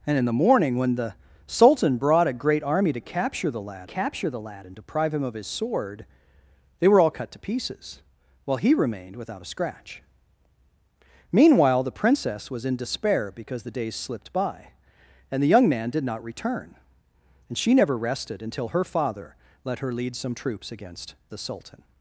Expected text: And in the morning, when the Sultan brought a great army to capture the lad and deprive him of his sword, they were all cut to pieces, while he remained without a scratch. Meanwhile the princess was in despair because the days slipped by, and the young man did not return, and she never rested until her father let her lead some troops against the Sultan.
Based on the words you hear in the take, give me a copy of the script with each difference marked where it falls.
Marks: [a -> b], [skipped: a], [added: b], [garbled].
And in the morning, when the Sultan brought a great army to capture the lad [added: capture the lad] and deprive him of his sword, they were all cut to pieces, while he remained without a scratch. Meanwhile the princess was in despair because the days slipped by, and the young man did not return, and she never rested until her father let her lead some troops against the Sultan.